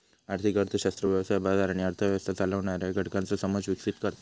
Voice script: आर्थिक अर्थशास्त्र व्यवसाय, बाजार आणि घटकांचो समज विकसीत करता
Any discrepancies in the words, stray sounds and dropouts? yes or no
yes